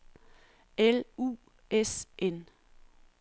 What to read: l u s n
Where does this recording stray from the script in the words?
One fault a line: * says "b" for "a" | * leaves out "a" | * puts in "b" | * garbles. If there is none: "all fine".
all fine